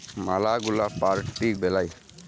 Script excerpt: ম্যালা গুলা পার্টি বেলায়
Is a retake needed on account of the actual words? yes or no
no